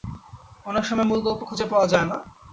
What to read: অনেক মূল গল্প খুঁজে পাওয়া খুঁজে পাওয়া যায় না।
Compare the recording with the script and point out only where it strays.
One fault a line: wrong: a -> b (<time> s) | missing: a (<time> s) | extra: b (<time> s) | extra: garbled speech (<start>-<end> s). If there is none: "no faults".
extra: সময় (0.8 s)
missing: খুঁজে পাওয়া (1.9 s)